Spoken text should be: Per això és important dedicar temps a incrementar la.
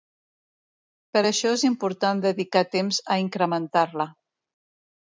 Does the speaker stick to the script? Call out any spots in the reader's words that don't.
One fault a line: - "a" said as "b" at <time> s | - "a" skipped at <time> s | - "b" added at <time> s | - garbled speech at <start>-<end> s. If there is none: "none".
none